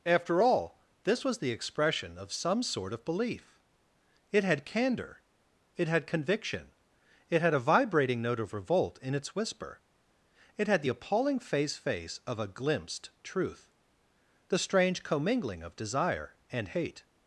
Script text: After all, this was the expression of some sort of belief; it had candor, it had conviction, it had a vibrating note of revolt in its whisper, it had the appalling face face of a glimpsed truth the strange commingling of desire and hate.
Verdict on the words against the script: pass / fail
pass